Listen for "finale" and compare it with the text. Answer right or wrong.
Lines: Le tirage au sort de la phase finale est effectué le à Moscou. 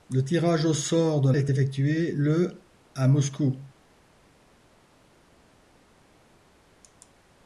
wrong